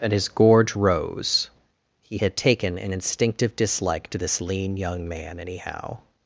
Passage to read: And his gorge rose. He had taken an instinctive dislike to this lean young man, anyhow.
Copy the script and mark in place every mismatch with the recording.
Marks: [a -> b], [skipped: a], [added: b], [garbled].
And his gorge rose. He had taken an instinctive dislike to this lean young man, anyhow.